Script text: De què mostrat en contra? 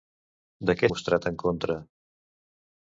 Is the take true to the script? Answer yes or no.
yes